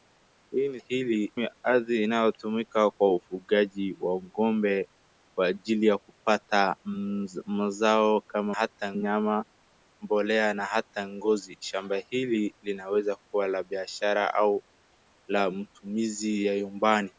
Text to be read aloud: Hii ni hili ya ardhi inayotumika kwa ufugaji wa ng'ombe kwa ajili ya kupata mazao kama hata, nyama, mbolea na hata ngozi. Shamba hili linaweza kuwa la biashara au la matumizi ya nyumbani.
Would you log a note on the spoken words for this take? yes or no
no